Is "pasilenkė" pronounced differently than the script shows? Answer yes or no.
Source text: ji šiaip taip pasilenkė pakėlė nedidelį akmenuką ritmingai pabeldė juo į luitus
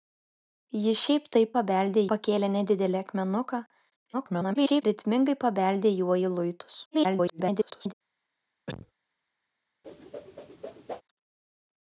yes